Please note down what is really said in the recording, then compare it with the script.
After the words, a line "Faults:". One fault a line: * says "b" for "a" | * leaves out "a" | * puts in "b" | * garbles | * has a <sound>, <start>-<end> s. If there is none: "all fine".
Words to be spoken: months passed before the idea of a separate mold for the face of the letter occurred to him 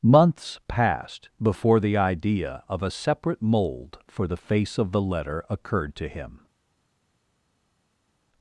months passed before the idea of a separate mold for the face of the letter occurred to him
Faults:
all fine